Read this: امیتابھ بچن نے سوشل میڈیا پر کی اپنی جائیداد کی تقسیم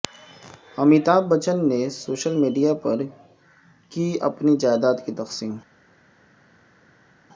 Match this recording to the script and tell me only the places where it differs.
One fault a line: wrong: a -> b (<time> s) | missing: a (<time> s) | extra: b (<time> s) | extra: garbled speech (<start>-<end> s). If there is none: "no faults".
no faults